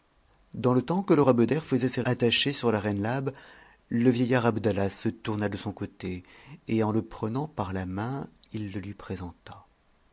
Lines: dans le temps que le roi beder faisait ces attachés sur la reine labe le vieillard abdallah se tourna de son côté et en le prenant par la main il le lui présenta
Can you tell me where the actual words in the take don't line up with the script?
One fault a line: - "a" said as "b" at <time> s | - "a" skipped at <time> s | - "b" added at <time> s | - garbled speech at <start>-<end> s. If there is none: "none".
none